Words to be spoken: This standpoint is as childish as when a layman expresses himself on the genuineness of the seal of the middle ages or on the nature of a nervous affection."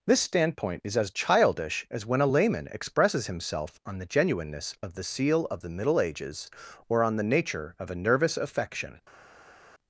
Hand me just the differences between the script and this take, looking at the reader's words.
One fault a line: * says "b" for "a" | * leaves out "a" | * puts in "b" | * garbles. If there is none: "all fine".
all fine